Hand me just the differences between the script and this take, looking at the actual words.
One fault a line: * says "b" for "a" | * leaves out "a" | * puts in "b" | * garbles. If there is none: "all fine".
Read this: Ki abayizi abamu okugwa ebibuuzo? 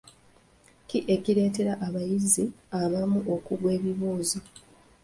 * puts in "ekireetera"